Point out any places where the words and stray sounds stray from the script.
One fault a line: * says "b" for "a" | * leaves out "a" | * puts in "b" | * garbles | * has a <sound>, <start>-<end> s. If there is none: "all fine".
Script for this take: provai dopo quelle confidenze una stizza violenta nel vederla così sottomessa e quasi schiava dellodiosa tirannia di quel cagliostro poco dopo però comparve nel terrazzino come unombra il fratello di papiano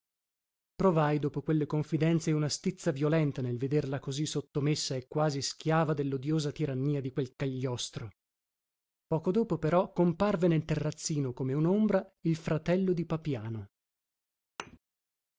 * has a thud, 14.6-14.8 s